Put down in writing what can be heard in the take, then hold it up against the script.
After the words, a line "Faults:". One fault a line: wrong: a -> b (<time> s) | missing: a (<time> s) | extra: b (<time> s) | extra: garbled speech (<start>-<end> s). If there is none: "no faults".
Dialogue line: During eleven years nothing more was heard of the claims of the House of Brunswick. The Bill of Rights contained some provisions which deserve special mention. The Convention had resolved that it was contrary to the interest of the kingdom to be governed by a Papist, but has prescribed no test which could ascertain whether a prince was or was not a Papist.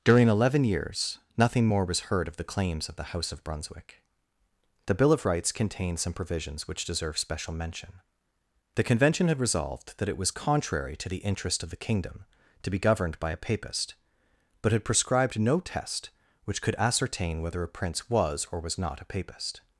During eleven years nothing more was heard of the claims of the House of Brunswick. The Bill of Rights contained some provisions which deserve special mention. The Convention had resolved that it was contrary to the interest of the kingdom to be governed by a Papist, but had prescribed no test which could ascertain whether a prince was or was not a Papist.
Faults:
wrong: has -> had (14.7 s)